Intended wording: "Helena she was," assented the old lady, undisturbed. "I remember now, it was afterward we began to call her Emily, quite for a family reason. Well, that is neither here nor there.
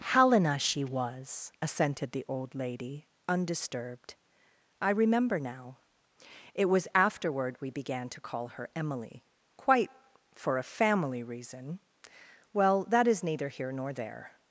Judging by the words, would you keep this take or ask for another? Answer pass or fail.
pass